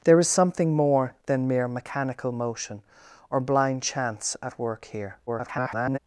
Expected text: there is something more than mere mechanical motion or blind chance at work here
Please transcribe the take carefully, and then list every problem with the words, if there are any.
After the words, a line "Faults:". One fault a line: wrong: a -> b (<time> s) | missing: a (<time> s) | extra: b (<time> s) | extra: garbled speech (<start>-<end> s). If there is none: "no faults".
there is something more than mere mechanical motion or blind chance at work here [garbled]
Faults:
extra: garbled speech (5.3-6.0 s)